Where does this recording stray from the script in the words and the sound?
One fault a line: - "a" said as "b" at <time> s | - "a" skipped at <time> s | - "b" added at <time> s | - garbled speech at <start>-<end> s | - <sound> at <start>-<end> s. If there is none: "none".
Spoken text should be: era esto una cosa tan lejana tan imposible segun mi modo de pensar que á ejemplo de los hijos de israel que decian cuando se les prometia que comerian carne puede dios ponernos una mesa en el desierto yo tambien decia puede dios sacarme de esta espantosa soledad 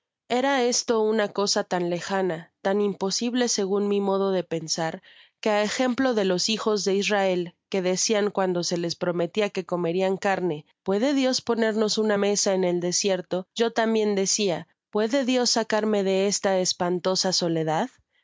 none